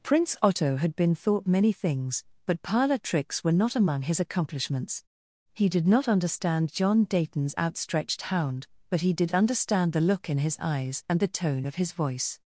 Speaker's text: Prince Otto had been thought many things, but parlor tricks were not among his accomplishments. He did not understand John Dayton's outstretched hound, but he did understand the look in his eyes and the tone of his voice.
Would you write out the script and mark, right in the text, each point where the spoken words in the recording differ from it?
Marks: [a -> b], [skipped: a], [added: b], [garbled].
Prince Otto had been thought many things, but parlor tricks were not among his accomplishments. He did not understand John Dayton's outstretched hound, but he did understand the look in his eyes and the tone of his voice.